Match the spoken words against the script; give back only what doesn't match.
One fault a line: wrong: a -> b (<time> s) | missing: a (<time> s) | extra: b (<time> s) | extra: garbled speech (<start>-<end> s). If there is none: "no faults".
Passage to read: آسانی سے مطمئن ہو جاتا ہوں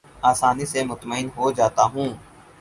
no faults